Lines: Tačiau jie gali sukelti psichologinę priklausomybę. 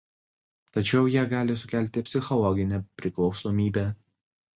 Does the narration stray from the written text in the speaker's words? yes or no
no